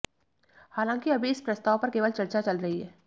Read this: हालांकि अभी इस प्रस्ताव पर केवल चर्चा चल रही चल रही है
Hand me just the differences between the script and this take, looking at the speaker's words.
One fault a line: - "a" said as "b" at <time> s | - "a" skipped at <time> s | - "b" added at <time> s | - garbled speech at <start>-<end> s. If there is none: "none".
- "चल रही" skipped at 2.8 s